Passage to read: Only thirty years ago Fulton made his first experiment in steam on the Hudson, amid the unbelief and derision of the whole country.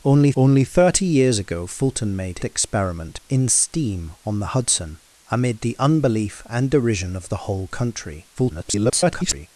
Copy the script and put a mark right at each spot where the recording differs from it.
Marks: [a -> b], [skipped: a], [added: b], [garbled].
Only [added: only] thirty years ago Fulton made [skipped: his first] experiment in steam on the Hudson, amid the unbelief and derision of the whole country. [garbled]